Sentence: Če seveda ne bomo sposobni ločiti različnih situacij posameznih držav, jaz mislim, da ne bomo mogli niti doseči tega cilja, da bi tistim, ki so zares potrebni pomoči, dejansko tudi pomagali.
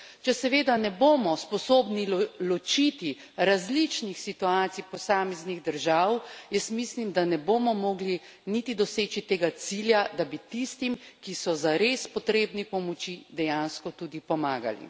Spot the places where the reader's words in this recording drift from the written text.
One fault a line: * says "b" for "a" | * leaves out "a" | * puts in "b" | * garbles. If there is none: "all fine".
all fine